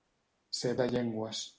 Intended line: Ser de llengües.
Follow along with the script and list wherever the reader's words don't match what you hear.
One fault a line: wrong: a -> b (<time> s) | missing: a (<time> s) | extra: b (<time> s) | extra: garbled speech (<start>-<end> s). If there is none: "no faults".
no faults